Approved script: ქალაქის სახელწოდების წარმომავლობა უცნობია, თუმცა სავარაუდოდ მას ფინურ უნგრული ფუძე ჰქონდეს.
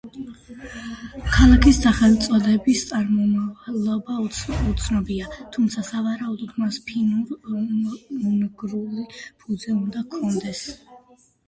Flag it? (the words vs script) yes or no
yes